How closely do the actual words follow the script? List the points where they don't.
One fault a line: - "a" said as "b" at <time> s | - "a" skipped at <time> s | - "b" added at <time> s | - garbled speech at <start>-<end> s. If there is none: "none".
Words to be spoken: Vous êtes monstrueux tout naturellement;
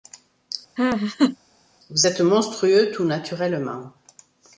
none